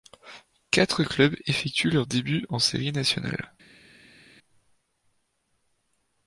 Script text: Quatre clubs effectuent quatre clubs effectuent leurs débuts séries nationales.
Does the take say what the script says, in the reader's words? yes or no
no